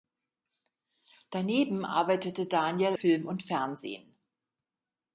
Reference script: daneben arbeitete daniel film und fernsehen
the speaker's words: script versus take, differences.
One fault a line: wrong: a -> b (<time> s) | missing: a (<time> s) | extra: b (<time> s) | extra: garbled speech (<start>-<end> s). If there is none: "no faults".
no faults